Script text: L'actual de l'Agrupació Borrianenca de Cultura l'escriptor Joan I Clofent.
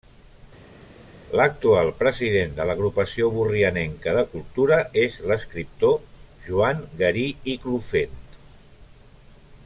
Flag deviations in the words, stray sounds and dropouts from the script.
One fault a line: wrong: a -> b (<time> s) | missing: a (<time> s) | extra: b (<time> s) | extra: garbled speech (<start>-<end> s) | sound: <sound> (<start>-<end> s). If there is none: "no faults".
extra: president (2.0 s)
extra: és (5.1 s)
extra: Garí (7.0 s)